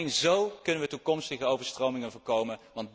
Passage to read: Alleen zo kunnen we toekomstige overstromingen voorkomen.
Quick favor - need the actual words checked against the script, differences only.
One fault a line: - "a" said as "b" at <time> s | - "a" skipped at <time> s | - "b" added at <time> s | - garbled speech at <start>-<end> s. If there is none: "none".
none